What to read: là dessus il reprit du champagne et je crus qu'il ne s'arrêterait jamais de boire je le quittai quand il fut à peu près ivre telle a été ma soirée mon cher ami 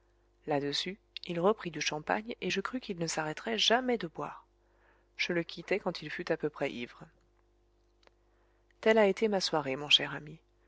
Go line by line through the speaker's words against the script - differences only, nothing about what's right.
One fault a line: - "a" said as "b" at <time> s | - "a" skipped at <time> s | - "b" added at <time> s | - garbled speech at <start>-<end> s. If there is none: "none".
none